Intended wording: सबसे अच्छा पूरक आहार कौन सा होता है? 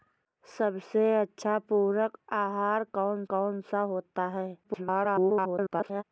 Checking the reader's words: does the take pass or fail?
fail